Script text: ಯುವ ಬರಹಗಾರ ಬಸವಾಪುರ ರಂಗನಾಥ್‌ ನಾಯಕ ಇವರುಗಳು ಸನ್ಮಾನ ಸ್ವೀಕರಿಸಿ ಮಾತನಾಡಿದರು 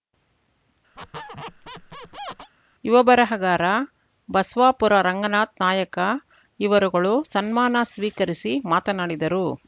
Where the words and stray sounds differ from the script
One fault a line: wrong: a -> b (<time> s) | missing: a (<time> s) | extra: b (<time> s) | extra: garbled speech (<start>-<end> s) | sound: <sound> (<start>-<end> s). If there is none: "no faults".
sound: squeak (1.0-2.5 s)